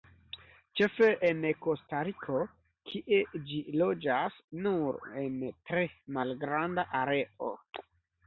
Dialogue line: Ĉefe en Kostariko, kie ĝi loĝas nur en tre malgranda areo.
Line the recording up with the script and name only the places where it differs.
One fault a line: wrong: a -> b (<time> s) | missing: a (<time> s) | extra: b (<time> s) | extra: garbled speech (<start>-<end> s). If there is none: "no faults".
no faults